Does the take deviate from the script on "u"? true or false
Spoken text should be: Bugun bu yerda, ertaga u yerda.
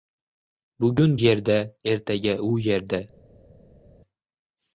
false